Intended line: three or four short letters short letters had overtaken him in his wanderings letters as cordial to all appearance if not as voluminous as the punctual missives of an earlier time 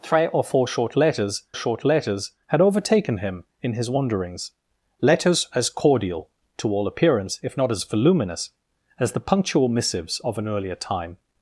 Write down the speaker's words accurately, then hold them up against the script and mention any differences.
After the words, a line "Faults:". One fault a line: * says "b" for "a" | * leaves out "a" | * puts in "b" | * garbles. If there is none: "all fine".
three or four short letters short letters had overtaken him in his wanderings letters as cordial to all appearance if not as voluminous as the punctual missives of an earlier time
Faults:
all fine